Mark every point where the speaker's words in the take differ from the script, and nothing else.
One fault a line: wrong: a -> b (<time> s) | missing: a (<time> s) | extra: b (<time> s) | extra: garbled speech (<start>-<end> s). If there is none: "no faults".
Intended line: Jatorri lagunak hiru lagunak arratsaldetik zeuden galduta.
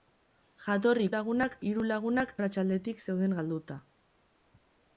no faults